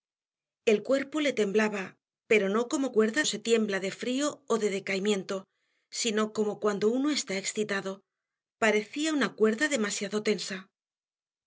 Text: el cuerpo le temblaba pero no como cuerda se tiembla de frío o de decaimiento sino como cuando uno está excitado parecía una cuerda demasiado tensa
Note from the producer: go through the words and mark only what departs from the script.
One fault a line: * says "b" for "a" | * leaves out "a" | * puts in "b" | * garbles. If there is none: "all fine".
all fine